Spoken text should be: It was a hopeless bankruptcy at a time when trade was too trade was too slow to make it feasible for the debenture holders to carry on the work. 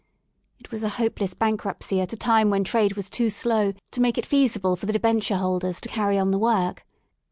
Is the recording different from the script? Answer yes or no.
yes